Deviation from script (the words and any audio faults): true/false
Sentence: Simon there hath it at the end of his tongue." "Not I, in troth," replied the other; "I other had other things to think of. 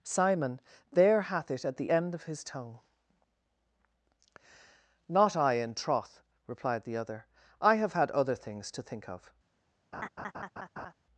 true